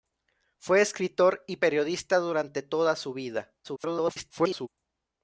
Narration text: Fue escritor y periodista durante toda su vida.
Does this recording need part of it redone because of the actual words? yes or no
yes